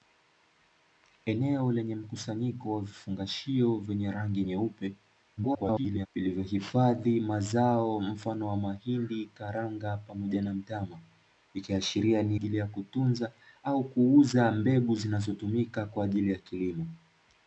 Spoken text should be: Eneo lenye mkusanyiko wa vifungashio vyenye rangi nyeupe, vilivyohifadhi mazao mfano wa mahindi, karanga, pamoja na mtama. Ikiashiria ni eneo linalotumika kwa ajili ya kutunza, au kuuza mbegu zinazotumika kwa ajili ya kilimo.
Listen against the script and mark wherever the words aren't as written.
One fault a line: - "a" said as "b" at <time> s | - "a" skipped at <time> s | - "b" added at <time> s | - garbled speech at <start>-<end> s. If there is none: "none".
- garbled speech at 5.4-6.1 s
- "eneo linalotumika kwa" skipped at 12.4 s